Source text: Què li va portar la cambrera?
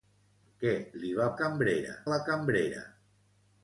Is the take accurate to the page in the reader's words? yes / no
no